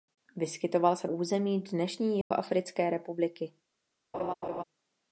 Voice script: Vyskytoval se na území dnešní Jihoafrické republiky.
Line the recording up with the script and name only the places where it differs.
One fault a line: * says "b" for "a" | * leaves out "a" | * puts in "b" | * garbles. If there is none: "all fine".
* leaves out "na"